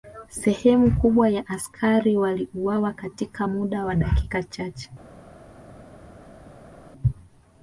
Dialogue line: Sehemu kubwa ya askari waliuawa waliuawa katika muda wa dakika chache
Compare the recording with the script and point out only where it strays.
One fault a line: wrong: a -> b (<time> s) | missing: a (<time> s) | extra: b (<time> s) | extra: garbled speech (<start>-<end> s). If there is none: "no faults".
missing: waliuawa (2.9 s)